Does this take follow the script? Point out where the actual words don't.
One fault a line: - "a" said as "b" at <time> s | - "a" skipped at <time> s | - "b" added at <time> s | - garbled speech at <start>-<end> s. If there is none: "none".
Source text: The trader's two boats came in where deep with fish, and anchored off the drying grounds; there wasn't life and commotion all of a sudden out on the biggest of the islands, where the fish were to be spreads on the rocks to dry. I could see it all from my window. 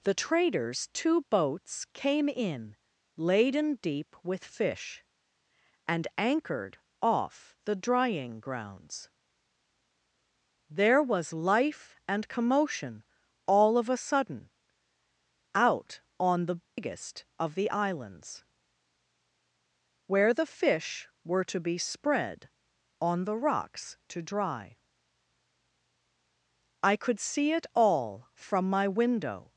- "where" said as "laden" at 3.2 s
- "wasn't" said as "was" at 11.0 s
- "spreads" said as "spread" at 21.8 s